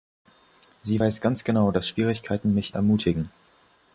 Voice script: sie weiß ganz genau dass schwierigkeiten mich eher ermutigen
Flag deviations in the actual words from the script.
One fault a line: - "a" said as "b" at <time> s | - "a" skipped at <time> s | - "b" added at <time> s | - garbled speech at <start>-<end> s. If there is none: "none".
- "eher" skipped at 2.8 s